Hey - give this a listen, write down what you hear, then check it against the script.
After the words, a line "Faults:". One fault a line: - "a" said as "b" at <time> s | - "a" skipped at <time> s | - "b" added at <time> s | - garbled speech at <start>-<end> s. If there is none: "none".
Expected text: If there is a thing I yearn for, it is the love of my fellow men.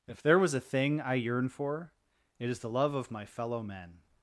If there was a thing I yearn for, it is the love of my fellow men.
Faults:
- "is" said as "was" at 0.4 s